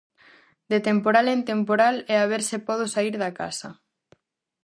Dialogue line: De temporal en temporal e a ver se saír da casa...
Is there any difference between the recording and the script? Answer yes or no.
yes